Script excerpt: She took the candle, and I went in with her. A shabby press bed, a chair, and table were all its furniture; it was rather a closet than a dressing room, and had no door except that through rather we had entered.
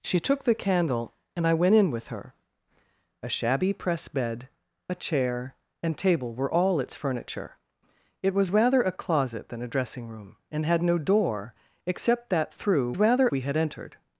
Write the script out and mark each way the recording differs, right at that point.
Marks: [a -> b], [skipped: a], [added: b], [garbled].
She took the candle, and I went in with her. A shabby press bed, a chair, and table were all its furniture; it was rather a closet than a dressing room, and had no door except that through rather we had entered.